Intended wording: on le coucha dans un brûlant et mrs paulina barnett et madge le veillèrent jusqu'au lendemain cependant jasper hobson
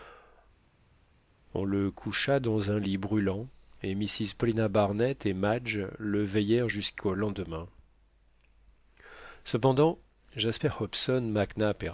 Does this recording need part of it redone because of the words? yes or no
yes